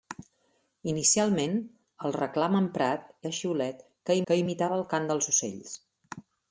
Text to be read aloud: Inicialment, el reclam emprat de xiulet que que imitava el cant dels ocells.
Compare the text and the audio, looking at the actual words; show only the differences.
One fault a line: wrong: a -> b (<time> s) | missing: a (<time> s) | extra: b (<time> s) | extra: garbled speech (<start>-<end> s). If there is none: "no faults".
no faults